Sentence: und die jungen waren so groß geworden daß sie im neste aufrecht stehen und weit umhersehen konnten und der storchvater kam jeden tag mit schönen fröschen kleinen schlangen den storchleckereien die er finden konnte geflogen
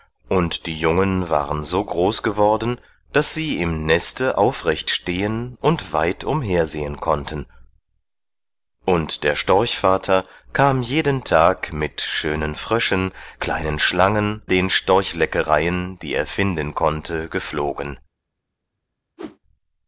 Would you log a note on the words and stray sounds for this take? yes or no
yes